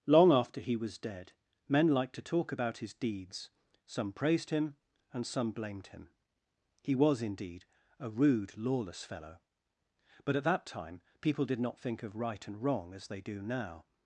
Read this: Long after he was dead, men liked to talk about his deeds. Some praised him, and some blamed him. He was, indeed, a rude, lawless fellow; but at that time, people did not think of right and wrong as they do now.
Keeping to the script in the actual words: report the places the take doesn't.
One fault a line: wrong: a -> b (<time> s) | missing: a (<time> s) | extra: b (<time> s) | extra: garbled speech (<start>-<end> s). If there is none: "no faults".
no faults